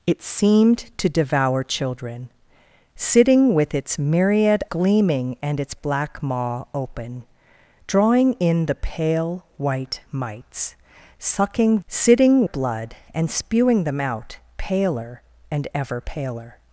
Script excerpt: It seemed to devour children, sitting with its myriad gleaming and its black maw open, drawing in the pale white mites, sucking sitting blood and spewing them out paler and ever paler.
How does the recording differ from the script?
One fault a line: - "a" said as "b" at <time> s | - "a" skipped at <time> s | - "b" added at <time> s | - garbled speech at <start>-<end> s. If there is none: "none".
none